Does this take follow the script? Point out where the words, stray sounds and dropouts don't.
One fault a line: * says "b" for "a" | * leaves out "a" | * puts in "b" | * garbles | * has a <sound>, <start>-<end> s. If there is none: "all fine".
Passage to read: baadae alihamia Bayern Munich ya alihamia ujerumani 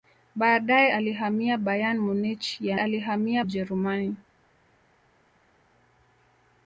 all fine